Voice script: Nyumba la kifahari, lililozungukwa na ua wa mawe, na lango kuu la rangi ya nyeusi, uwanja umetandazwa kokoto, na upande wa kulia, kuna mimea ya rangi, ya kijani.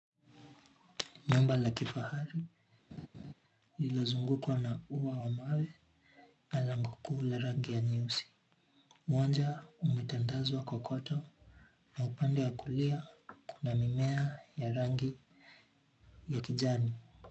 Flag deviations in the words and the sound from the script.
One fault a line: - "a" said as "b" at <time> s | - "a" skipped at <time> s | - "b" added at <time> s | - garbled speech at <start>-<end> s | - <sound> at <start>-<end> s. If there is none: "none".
- laugh at 2.9-3.3 s